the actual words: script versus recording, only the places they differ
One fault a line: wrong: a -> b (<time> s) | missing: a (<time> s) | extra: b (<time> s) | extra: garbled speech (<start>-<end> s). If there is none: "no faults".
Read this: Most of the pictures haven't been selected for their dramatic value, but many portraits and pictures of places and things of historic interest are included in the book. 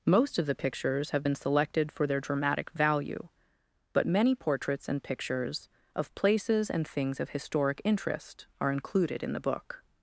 wrong: haven't -> have (1.1 s)